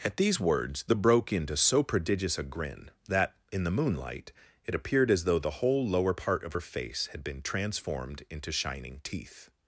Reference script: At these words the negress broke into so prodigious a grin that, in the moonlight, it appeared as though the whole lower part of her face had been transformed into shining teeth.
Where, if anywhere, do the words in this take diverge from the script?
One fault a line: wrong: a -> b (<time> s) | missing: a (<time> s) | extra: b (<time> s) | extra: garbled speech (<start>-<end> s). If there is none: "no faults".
missing: negress (0.9 s)